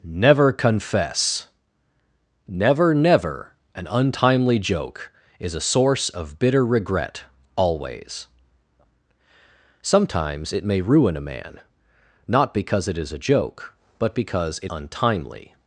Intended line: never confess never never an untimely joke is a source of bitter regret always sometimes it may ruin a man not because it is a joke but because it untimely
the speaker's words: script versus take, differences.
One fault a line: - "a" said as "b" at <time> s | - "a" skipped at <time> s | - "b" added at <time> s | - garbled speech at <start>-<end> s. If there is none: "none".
none